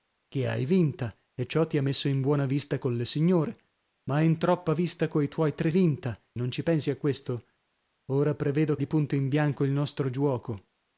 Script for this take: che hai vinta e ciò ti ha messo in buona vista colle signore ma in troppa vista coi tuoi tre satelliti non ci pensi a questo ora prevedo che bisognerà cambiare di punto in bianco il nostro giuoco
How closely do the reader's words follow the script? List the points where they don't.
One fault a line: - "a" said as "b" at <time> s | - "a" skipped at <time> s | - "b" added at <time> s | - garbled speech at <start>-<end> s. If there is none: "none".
- "satelliti" said as "vinta" at 5.7 s
- "che bisognerà cambiare" skipped at 8.8 s